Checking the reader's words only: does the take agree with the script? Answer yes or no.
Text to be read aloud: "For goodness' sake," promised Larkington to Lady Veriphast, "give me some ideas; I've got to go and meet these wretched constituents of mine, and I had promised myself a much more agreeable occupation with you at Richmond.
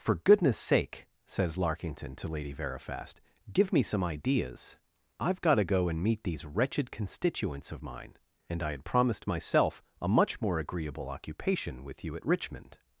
no